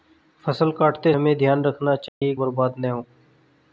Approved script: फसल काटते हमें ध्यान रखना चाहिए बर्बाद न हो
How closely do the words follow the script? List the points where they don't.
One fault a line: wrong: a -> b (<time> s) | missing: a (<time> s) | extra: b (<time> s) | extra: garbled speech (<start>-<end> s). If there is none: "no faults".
no faults